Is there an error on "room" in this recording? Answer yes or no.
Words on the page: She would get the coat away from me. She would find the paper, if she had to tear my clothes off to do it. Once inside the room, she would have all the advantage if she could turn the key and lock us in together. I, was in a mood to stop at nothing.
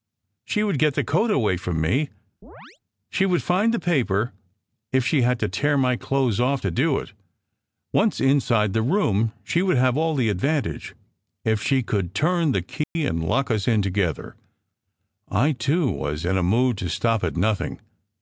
no